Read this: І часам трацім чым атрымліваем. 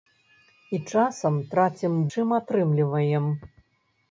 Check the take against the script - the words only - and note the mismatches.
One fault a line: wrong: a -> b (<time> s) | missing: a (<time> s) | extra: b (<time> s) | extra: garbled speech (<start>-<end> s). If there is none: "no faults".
no faults